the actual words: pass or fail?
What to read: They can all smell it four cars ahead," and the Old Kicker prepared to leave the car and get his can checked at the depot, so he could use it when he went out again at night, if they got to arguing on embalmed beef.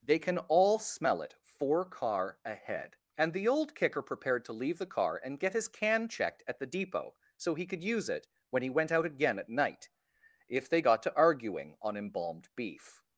fail